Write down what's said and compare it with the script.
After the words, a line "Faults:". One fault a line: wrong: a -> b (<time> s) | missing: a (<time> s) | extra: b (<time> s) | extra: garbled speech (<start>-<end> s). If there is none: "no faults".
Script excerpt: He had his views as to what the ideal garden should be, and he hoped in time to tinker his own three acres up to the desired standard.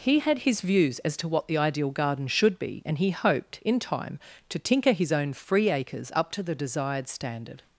He had his views as to what the ideal garden should be, and he hoped in time to tinker his own free acres up to the desired standard.
Faults:
wrong: three -> free (5.3 s)